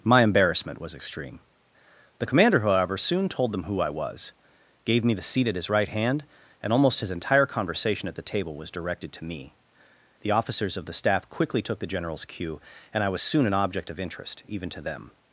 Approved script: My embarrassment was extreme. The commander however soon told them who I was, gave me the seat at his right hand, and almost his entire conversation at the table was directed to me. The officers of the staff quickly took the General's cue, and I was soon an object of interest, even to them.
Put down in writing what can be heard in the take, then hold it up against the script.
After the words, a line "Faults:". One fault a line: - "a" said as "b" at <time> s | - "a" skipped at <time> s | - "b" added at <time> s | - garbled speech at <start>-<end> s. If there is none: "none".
My embarrassment was extreme. The commander however soon told them who I was, gave me the seat at his right hand, and almost his entire conversation at the table was directed to me. The officers of the staff quickly took the General's cue, and I was soon an object of interest, even to them.
Faults:
none